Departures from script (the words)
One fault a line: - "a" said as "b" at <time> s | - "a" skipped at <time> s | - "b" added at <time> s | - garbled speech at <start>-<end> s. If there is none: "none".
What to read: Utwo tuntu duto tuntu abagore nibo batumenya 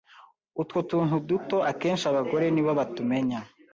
- "tuntu" said as "akenshi" at 1.7 s